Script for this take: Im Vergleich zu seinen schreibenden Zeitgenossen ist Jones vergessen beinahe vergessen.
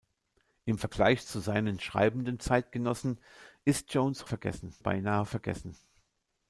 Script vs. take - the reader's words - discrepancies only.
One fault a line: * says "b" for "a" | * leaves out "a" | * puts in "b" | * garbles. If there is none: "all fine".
all fine